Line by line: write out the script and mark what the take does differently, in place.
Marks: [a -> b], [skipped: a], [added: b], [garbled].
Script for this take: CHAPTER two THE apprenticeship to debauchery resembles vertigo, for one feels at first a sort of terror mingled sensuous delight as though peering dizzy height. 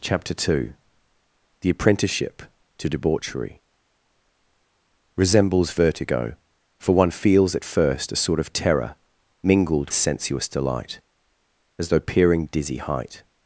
CHAPTER two THE apprenticeship to debauchery resembles vertigo, for one feels at first a sort of terror mingled sensuous delight as though peering dizzy height.